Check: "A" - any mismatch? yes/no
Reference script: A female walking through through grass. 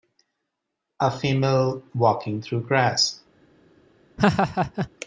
no